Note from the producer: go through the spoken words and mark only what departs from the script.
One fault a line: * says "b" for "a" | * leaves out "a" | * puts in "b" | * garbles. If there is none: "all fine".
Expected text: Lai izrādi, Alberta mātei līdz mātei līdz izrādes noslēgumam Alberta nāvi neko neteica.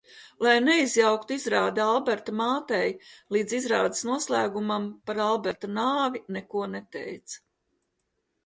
* puts in "neizjauktu"
* leaves out "mātei līdz"
* puts in "par"